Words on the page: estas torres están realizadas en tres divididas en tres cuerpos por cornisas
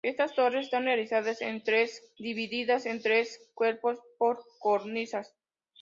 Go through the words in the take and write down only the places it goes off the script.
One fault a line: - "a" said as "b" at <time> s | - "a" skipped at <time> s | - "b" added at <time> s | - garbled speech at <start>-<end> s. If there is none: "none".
none